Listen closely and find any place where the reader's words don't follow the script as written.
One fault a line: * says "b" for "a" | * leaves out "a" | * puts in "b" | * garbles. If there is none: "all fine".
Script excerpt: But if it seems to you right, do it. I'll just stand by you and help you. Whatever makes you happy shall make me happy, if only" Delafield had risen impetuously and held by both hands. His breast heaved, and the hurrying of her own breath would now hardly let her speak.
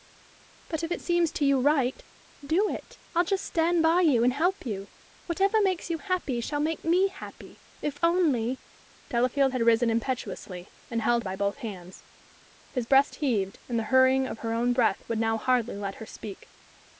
all fine